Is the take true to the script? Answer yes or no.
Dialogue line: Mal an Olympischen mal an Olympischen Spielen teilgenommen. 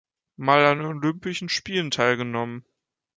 no